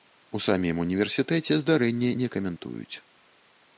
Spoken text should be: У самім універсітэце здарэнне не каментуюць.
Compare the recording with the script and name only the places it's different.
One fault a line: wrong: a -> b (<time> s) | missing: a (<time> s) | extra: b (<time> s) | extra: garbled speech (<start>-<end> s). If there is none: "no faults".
no faults